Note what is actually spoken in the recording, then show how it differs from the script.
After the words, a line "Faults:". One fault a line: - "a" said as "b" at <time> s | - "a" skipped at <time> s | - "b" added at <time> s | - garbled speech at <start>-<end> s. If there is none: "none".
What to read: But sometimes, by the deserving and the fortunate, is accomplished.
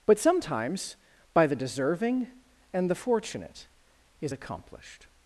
But sometimes, by the deserving and the fortunate, is accomplished.
Faults:
none